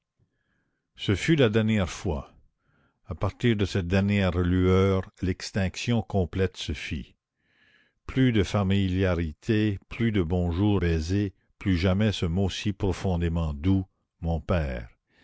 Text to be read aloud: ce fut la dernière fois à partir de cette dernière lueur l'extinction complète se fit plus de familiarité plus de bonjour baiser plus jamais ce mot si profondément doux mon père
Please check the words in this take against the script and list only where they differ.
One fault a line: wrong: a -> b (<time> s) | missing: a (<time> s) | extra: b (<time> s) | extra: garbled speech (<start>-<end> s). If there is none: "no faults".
no faults